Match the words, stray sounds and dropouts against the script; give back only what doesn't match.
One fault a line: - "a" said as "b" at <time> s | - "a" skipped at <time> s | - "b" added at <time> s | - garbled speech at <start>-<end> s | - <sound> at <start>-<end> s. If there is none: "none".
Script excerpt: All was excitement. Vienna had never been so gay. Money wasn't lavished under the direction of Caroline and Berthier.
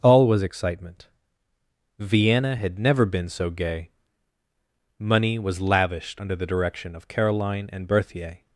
- "wasn't" said as "was" at 5.4 s